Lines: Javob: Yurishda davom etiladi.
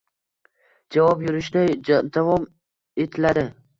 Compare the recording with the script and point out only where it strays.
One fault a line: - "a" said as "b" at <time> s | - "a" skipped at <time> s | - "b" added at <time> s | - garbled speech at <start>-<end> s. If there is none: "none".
none